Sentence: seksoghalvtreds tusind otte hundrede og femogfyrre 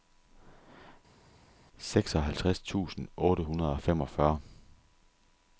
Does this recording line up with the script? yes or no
yes